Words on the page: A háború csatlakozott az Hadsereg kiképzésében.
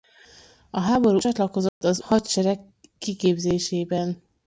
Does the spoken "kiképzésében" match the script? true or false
true